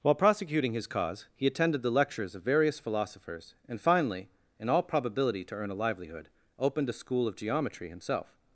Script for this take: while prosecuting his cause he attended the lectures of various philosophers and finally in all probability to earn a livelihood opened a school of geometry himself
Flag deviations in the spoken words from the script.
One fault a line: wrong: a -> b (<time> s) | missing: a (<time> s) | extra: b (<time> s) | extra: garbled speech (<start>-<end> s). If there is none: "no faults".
no faults